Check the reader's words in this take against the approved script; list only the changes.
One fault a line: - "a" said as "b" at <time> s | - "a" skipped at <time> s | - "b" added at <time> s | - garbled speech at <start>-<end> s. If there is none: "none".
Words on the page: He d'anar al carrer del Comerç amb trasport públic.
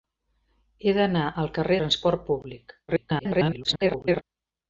- "del Comerç amb" skipped at 1.8 s
- garbled speech at 2.9-4.2 s